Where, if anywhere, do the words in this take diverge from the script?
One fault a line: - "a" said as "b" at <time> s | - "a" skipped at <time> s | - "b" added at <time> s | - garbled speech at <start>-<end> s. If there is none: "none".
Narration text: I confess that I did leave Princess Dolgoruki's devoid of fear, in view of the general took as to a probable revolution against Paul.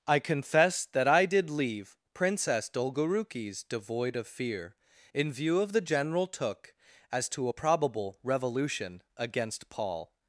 none